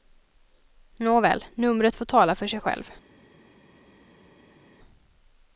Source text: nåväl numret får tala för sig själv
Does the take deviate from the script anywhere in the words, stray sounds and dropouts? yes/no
no